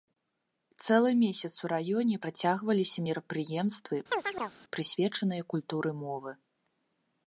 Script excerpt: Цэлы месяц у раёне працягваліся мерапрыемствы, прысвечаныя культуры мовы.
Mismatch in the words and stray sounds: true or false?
true